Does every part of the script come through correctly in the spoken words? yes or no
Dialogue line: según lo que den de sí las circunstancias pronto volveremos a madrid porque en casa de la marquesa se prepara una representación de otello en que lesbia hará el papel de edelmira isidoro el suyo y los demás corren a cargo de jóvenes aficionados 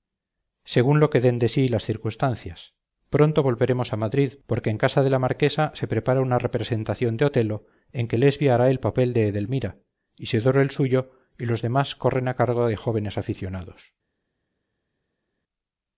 yes